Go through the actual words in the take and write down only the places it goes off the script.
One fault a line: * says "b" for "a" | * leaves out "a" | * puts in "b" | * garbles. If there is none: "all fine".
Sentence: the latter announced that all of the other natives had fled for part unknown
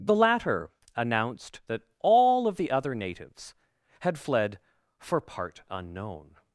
all fine